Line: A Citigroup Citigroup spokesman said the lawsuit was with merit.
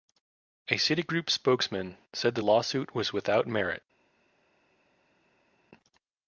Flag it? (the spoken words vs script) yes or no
yes